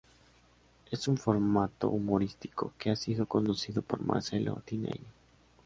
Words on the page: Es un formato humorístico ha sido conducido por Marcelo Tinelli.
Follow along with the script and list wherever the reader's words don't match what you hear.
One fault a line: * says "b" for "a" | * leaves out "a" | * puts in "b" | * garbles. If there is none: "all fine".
* puts in "que"